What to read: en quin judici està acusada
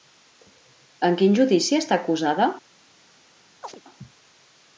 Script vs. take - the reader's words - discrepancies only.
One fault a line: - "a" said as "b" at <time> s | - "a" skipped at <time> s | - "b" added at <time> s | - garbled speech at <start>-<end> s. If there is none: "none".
none